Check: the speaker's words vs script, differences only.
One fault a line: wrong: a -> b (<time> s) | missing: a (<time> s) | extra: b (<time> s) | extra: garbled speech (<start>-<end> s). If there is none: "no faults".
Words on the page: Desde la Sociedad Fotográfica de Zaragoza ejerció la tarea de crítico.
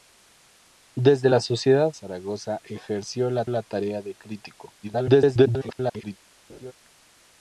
missing: Fotográfica de (1.9 s)
extra: la (3.5 s)
extra: garbled speech (4.8-6.2 s)